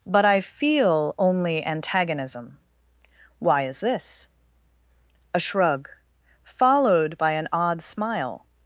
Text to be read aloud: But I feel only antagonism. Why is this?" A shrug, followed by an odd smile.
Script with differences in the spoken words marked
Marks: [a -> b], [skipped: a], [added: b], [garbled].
But I feel only antagonism. Why is this?" A shrug, followed by an odd smile.